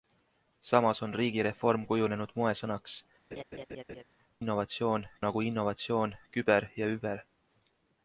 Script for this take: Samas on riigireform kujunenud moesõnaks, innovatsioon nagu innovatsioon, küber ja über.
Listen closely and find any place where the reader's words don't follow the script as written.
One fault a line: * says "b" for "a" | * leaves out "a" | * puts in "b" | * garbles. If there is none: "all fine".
all fine